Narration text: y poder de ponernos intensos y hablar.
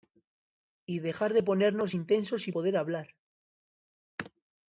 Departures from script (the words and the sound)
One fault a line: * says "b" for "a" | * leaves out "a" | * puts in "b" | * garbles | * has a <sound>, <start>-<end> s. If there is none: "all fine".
* says "dejar" for "poder"
* puts in "poder"